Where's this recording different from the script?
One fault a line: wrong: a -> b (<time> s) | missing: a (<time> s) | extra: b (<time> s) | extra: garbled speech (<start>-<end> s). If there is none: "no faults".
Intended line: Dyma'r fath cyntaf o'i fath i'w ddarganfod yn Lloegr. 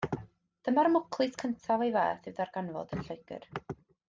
wrong: fath -> mwclis (0.9 s)